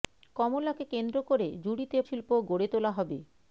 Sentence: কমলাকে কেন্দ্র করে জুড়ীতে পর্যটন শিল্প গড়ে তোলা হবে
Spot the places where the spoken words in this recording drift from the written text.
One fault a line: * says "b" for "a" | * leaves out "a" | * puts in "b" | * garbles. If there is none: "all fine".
* leaves out "পর্যটন"